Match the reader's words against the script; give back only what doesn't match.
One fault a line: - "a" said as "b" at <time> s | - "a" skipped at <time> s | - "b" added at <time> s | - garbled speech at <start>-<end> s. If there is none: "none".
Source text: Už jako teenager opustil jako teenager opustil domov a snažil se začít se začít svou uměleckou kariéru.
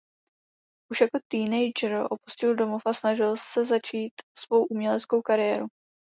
- "jako teenager opustil" skipped at 2.5 s
- "se začít" skipped at 4.1 s